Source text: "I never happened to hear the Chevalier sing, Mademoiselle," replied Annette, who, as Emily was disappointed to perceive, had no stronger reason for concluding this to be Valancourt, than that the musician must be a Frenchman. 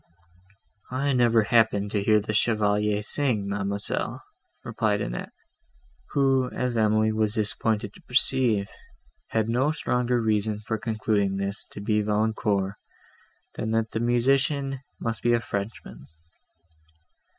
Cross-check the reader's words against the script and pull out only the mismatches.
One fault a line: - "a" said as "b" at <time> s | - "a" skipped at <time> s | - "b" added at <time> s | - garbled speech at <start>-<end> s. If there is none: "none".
none